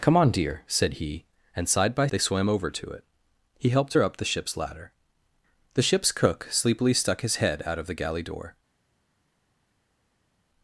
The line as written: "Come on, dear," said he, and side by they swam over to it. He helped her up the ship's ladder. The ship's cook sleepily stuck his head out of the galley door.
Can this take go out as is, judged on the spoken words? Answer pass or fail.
pass